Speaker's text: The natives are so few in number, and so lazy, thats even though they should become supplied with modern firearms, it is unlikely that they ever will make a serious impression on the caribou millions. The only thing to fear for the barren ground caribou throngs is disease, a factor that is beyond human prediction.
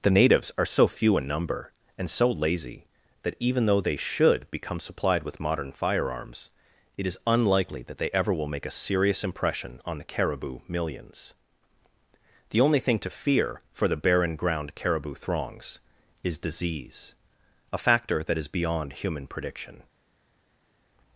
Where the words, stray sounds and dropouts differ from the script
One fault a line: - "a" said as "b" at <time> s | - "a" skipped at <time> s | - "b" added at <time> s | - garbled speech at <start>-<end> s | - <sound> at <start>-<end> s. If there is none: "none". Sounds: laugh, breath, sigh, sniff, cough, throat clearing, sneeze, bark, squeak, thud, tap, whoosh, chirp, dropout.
- "thats" said as "that" at 3.2 s